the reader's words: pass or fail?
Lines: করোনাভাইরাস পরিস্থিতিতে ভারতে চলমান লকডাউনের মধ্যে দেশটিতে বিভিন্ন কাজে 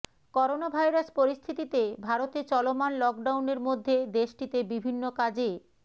pass